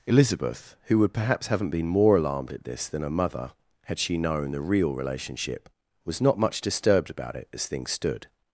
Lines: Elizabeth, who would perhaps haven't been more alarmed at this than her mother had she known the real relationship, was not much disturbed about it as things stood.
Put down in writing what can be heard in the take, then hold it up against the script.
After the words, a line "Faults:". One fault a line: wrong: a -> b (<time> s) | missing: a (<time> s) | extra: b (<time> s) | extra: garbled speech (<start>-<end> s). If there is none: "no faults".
Elizabeth, who would perhaps haven't been more alarmed at this than her mother had she known the real relationship, was not much disturbed about it as things stood.
Faults:
no faults